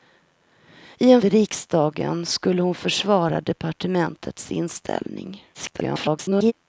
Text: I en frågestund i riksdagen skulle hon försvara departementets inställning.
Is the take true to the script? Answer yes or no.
no